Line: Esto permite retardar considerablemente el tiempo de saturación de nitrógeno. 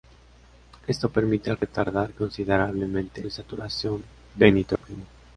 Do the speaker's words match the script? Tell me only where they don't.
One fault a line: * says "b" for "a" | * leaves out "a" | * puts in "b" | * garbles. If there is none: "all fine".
* leaves out "el tiempo"